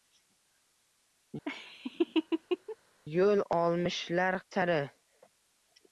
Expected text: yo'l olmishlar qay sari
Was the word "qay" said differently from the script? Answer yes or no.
yes